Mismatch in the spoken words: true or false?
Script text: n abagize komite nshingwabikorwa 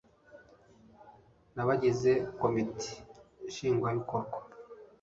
false